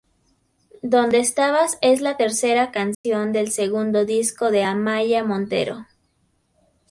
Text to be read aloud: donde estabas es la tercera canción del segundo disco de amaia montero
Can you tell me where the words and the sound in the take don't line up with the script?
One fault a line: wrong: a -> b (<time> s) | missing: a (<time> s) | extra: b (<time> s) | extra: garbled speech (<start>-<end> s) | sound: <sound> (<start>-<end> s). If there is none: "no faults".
sound: dropout (2.9-3.0 s)